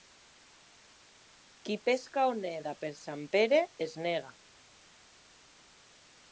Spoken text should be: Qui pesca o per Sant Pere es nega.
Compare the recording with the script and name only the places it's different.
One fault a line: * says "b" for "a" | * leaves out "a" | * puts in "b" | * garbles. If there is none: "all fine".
* puts in "neda"